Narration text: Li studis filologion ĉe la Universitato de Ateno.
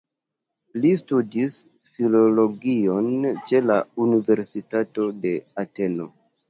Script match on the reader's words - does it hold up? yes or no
yes